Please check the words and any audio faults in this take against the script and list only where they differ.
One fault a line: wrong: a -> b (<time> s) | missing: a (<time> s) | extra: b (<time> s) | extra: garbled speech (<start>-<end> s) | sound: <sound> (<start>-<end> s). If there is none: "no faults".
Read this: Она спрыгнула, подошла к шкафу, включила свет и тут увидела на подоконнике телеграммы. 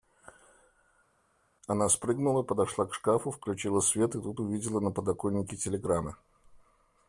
no faults